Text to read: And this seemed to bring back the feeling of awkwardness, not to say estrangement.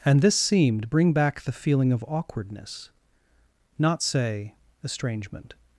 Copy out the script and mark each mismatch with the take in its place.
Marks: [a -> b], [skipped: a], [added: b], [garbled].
And this seemed [skipped: to] bring back the feeling of awkwardness, not [skipped: to] say estrangement.